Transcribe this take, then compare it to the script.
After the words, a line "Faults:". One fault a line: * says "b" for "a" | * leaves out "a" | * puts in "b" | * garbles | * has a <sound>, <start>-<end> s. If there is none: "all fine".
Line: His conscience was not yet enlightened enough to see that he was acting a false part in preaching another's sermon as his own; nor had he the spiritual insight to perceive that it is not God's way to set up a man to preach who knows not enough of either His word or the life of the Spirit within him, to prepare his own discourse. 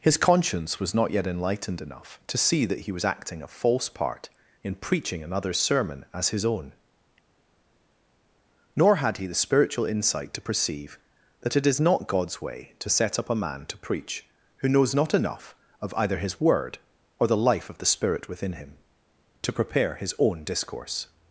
His conscience was not yet enlightened enough to see that he was acting a false part in preaching another's sermon as his own; nor had he the spiritual insight to perceive that it is not God's way to set up a man to preach who knows not enough of either His word or the life of the Spirit within him, to prepare his own discourse.
Faults:
all fine